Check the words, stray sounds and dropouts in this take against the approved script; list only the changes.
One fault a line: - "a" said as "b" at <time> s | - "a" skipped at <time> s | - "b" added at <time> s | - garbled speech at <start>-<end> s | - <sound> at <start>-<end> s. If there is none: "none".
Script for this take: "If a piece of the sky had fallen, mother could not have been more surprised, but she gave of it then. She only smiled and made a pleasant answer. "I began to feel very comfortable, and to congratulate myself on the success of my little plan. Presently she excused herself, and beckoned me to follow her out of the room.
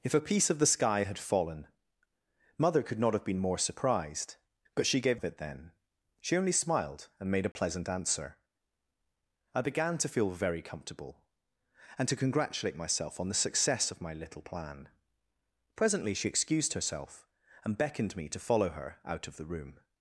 - dropout at 7.5-7.6 s